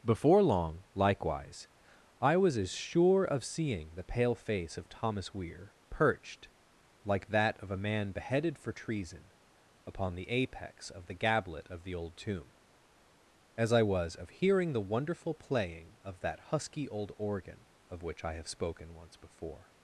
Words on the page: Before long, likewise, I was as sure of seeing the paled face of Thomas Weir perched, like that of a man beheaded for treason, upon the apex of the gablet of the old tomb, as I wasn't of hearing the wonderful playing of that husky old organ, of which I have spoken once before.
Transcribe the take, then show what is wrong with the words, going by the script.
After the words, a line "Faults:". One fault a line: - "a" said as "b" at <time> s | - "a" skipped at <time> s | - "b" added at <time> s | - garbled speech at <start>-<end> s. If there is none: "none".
Before long, likewise, I was as sure of seeing the pale face of Thomas Weir perched, like that of a man beheaded for treason, upon the apex of the gablet of the old tomb, as I was of hearing the wonderful playing of that husky old organ, of which I have spoken once before.
Faults:
- "paled" said as "pale" at 4.0 s
- "wasn't" said as "was" at 13.8 s